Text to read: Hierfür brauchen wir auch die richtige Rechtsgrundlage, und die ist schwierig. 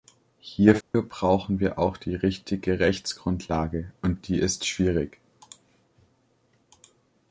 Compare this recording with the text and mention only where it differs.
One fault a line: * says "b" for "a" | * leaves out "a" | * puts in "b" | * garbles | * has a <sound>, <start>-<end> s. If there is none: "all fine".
* has a dropout, 0.8-0.9 s